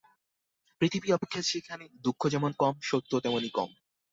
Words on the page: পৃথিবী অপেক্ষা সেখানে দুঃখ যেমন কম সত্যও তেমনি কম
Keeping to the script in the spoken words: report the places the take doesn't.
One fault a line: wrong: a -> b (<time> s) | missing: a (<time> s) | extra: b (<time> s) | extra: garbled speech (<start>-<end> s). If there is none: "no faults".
no faults